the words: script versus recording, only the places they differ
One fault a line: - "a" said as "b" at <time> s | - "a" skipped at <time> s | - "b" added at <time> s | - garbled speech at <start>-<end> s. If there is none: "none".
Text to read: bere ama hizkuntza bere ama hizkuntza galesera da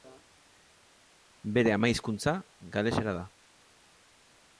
- "bere ama hizkuntza" skipped at 2.3 s